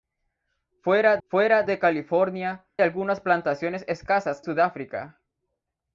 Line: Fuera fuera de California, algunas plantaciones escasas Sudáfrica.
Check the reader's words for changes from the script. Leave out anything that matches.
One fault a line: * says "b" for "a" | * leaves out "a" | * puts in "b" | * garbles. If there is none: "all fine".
all fine